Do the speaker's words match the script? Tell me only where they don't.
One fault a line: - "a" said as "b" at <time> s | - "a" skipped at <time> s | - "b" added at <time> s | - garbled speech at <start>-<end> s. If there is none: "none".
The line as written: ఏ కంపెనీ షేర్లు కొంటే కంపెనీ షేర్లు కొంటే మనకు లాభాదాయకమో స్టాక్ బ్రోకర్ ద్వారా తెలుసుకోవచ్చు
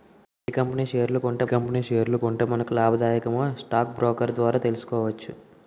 none